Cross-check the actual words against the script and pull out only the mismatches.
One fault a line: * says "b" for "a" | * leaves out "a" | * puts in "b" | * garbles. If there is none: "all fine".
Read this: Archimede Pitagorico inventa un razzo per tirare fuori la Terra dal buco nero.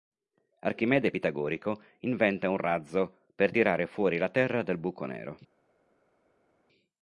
all fine